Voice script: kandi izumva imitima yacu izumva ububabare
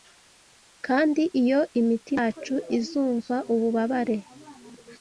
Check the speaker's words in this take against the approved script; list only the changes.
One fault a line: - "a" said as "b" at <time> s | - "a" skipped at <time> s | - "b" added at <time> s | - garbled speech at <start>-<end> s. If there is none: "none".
- "izumva" said as "iyo" at 1.4 s